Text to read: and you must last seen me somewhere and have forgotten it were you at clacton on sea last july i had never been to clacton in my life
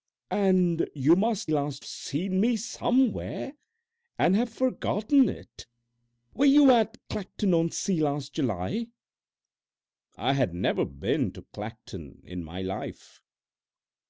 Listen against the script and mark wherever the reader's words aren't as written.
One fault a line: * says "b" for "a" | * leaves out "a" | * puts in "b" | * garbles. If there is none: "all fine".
all fine